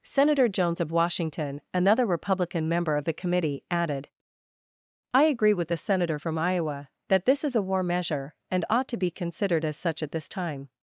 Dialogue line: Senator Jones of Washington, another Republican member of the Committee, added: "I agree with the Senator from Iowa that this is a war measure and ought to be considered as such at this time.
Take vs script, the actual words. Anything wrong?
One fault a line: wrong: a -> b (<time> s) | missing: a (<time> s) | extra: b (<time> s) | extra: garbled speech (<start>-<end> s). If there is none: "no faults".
no faults